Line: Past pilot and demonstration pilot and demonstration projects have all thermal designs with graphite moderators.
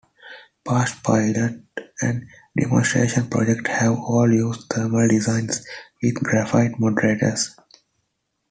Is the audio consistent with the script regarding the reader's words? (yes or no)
no